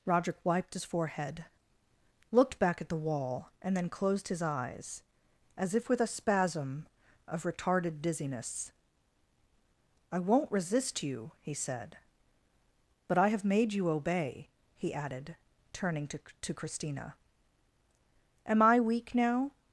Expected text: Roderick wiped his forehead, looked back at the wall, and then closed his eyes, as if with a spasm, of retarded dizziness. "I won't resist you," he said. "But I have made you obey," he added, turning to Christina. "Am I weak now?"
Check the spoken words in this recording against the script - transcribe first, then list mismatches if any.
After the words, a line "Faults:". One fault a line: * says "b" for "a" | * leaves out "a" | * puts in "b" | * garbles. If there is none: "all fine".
Roderick wiped his forehead, looked back at the wall, and then closed his eyes, as if with a spasm, of retarded dizziness. "I won't resist you," he said. "But I have made you obey," he added, turning to to Christina. "Am I weak now?"
Faults:
* puts in "to"